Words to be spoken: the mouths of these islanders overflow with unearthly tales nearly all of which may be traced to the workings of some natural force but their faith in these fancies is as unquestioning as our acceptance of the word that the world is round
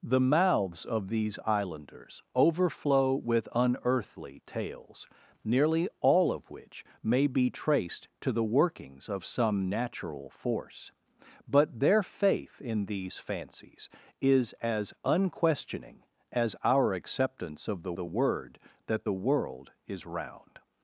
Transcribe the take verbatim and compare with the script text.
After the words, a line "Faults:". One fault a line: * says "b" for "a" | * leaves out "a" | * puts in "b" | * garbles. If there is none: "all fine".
the mouths of these islanders overflow with unearthly tales nearly all of which may be traced to the workings of some natural force but their faith in these fancies is as unquestioning as our acceptance of the the word that the world is round
Faults:
* puts in "the"